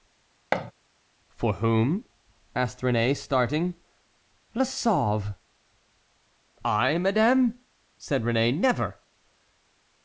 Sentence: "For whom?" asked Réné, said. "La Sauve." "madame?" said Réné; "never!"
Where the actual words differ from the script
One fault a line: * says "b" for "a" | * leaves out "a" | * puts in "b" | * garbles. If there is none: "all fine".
* says "starting" for "said"
* puts in "I"